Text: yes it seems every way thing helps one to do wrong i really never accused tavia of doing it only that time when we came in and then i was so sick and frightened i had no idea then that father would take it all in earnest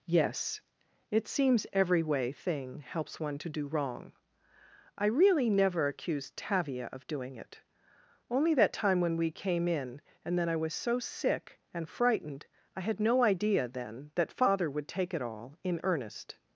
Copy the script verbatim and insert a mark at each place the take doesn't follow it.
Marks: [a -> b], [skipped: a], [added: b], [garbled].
yes it seems every way thing helps one to do wrong i really never accused tavia of doing it only that time when we came in and then i was so sick and frightened i had no idea then that father would take it all in earnest